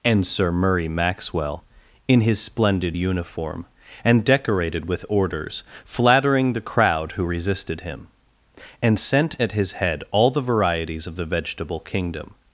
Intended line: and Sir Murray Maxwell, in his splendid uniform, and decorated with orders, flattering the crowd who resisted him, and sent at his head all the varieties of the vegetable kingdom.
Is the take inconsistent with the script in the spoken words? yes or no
no